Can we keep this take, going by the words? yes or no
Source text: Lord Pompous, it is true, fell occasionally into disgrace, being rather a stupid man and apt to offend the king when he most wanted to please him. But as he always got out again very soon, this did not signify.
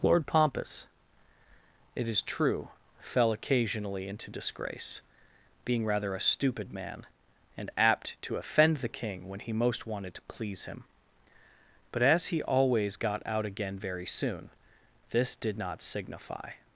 yes